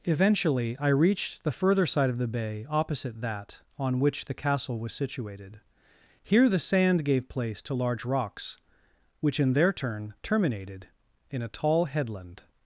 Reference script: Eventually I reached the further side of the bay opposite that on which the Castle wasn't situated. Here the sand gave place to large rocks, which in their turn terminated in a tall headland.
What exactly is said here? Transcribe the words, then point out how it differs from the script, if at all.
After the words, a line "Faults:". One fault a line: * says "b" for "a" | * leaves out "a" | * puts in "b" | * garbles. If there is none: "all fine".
Eventually I reached the further side of the bay opposite that on which the Castle was situated. Here the sand gave place to large rocks, which in their turn terminated in a tall headland.
Faults:
* says "was" for "wasn't"